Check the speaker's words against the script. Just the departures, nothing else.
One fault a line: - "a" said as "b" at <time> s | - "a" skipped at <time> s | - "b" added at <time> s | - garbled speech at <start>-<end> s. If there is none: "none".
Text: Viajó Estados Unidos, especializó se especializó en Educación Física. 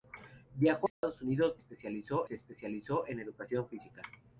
none